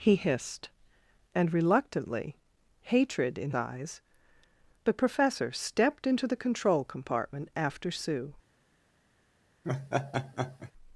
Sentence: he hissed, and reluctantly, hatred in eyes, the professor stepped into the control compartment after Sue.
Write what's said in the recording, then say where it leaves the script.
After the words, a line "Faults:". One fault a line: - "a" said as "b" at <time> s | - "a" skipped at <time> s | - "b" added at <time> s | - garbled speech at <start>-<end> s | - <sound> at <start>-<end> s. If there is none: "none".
he hissed, and reluctantly, hatred in eyes, the professor stepped into the control compartment after Sue.
Faults:
- laugh at 9.6-10.7 s